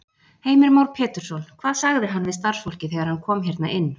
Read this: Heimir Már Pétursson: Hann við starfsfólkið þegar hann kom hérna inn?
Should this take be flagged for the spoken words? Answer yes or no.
yes